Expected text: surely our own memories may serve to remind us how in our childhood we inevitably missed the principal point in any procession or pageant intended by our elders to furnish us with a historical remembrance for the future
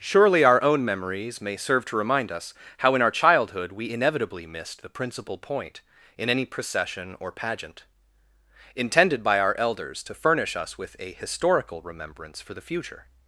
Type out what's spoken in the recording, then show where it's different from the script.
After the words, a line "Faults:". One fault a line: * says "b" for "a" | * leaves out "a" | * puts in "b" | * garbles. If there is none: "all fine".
surely our own memories may serve to remind us how in our childhood we inevitably missed the principal point in any procession or pageant intended by our elders to furnish us with a historical remembrance for the future
Faults:
all fine